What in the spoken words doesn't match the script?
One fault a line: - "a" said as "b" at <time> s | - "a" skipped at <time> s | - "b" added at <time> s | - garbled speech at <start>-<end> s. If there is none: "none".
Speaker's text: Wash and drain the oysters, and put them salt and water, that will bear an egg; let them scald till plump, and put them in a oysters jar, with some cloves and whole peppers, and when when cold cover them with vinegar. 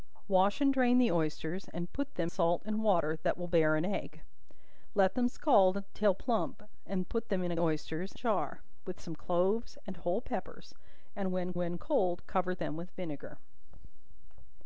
none